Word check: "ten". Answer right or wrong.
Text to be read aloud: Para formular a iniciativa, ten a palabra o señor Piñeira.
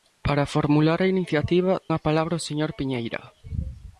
wrong